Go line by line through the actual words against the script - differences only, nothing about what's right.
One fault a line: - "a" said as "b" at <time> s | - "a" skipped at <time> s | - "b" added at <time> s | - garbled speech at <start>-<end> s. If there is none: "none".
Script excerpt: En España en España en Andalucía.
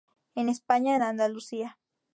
- "España en" skipped at 1.0 s